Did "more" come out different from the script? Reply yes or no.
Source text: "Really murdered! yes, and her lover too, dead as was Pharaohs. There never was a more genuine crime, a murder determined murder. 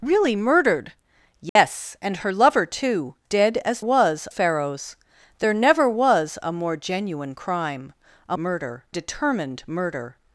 no